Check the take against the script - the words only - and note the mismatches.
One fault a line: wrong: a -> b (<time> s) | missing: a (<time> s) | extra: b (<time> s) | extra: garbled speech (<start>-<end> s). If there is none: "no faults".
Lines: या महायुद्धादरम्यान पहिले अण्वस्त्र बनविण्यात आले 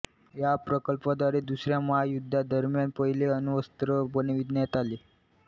extra: प्रकल्पाद्वारे दुसऱ्या (0.6 s)